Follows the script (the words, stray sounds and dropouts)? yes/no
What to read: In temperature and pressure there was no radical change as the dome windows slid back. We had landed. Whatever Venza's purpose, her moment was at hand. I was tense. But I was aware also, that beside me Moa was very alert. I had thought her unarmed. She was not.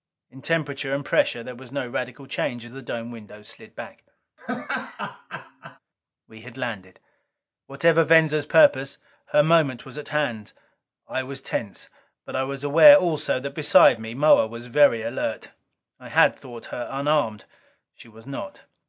no